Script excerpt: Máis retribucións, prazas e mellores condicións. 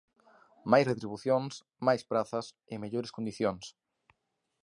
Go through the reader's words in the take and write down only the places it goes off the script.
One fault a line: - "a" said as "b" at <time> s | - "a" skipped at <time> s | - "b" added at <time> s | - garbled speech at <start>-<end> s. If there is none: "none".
- "máis" added at 1.9 s